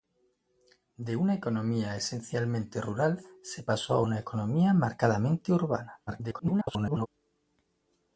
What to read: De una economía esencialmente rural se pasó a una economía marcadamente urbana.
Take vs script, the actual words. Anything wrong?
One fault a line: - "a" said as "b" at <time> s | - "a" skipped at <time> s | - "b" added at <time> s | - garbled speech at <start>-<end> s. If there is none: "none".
- garbled speech at 6.1-7.1 s